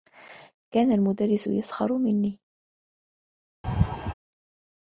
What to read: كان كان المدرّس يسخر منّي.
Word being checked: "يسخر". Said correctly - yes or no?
yes